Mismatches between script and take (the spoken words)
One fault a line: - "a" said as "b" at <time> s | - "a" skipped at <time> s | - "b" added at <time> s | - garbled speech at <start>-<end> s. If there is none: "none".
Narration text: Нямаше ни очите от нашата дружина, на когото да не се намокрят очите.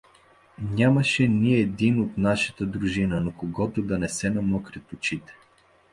- "очите" said as "един" at 1.5 s